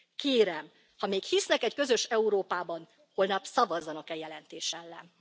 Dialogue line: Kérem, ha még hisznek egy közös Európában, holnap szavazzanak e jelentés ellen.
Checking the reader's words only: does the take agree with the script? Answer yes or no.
yes